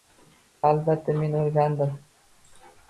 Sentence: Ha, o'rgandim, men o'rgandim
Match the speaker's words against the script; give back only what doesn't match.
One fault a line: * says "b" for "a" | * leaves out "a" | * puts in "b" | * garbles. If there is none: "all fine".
* says "albatta" for "o'rgandim"